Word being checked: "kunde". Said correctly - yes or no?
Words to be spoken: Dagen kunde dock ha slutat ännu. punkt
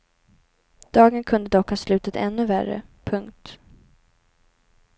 yes